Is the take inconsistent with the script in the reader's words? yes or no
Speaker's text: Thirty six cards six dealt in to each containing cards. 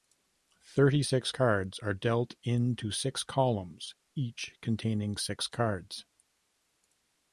yes